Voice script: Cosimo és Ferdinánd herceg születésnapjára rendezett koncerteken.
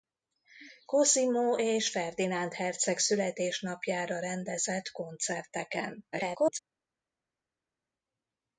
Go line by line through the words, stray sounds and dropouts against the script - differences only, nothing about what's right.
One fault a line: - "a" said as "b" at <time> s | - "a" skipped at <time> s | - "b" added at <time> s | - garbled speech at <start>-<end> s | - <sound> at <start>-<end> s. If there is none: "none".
- garbled speech at 6.1-6.6 s